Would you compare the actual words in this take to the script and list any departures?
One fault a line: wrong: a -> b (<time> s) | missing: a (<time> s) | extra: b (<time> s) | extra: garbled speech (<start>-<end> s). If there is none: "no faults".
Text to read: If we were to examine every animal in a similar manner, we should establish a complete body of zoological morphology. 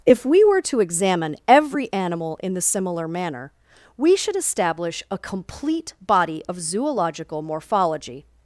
wrong: a -> the (2.5 s)